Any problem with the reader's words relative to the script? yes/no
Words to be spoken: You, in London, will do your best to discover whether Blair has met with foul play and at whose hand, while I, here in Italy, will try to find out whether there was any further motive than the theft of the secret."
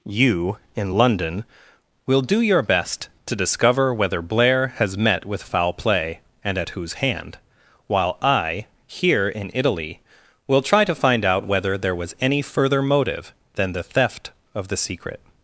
no